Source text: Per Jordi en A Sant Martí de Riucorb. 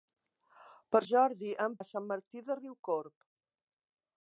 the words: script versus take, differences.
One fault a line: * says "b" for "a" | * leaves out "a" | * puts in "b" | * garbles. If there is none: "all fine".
all fine